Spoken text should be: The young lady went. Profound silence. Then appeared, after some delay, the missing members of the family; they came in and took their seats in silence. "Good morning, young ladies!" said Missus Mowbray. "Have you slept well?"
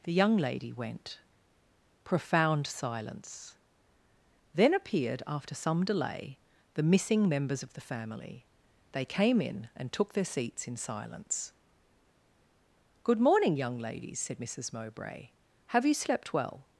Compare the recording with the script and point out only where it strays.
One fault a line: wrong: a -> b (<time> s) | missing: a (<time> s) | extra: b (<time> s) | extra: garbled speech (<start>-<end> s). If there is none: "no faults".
no faults